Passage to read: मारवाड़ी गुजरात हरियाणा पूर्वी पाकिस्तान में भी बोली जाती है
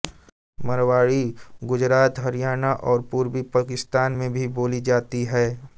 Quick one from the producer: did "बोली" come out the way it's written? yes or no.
yes